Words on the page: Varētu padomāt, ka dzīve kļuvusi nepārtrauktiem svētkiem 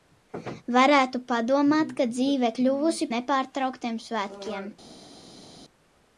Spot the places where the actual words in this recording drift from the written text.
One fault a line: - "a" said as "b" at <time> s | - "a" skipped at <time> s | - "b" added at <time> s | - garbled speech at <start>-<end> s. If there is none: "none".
none